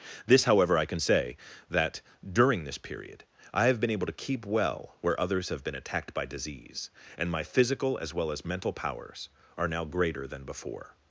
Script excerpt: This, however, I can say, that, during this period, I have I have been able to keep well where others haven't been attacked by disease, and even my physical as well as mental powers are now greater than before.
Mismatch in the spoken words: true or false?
true